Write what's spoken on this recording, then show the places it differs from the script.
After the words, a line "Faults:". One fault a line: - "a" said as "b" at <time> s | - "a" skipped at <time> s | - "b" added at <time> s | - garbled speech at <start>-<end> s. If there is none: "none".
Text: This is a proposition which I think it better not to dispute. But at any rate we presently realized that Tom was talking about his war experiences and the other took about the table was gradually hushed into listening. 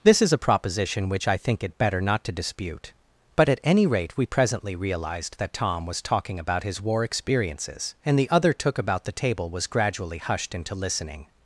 This is a proposition which I think it better not to dispute. But at any rate we presently realized that Tom was talking about his war experiences and the other took about the table was gradually hushed into listening.
Faults:
none